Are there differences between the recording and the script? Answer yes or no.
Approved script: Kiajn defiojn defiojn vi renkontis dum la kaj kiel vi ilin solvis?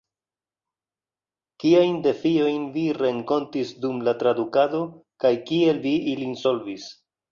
yes